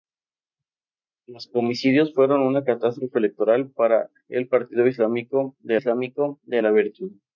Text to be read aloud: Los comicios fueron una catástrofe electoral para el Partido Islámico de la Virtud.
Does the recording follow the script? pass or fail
fail